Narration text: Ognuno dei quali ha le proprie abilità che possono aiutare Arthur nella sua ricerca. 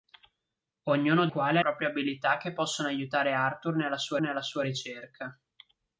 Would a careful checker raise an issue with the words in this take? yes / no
yes